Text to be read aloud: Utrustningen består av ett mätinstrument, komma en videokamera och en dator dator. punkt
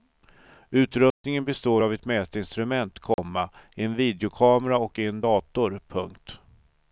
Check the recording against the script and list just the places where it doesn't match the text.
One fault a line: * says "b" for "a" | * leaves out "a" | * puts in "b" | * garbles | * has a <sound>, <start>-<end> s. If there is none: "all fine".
* has a dropout, 1.1-1.2 s
* has a dropout, 3.1-3.2 s
* leaves out "dator"